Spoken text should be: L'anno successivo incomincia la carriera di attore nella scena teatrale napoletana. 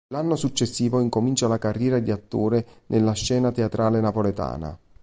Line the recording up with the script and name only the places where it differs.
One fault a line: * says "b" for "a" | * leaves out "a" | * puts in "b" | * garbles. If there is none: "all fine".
all fine